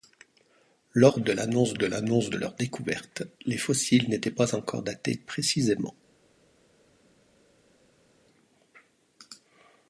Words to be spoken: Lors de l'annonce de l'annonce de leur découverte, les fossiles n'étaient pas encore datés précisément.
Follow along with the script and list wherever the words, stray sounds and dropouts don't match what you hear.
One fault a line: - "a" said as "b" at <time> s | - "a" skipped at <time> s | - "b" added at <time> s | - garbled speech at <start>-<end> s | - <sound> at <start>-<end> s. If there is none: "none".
none